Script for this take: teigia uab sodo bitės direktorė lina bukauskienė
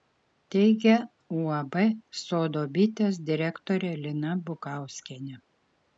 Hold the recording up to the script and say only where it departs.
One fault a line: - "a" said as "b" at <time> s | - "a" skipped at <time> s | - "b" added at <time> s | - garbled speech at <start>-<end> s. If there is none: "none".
none